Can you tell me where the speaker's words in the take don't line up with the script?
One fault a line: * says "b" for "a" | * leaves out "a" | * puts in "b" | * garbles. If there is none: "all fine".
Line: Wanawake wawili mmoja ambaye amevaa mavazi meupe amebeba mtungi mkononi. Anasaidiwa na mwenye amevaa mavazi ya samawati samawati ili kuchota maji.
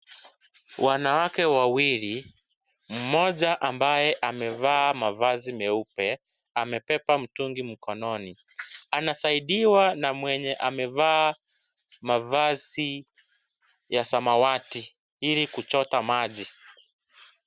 * leaves out "samawati"